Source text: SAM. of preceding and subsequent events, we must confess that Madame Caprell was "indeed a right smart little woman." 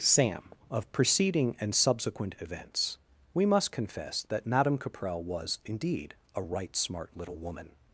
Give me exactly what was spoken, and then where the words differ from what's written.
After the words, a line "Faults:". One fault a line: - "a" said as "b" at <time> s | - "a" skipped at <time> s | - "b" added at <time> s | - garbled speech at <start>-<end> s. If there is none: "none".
SAM. of preceding and subsequent events, we must confess that Madame Caprell was "indeed a right smart little woman."
Faults:
none